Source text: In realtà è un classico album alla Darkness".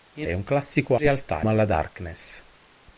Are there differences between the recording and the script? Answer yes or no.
yes